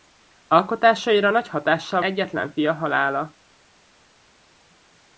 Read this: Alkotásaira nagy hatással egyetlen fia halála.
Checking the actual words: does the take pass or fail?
pass